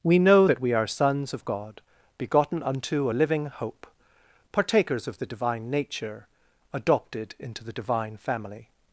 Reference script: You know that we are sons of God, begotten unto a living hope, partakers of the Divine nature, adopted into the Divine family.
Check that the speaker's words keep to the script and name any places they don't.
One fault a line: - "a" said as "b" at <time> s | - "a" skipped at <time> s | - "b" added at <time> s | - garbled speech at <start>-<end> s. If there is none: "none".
- "You" said as "We" at 0.0 s